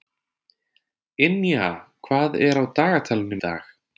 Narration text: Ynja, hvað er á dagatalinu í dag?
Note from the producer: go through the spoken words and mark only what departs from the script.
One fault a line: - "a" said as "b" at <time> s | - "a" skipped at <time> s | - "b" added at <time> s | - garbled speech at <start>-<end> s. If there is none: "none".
none